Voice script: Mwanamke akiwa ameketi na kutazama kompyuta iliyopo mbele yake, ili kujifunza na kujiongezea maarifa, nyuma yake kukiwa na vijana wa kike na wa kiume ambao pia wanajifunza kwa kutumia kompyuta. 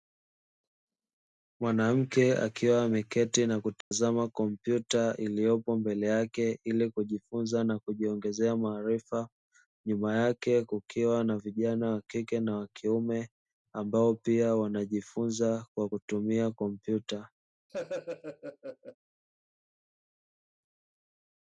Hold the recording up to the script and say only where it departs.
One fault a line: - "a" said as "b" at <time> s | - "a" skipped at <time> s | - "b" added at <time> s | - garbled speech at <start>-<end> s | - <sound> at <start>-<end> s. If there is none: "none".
- dropout at 3.8-3.9 s
- laugh at 17.7-19.0 s